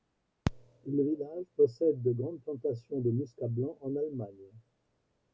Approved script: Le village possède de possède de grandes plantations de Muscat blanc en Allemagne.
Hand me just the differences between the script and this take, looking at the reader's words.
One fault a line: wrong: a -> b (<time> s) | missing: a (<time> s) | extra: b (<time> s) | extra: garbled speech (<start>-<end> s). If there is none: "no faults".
missing: possède de (2.1 s)